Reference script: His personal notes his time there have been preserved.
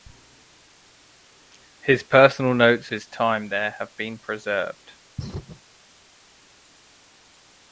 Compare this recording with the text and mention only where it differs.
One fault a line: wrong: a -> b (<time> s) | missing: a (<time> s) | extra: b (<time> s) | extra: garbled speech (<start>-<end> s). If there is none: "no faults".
no faults